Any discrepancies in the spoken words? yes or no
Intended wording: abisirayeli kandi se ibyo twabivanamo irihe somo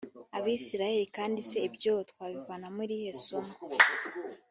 no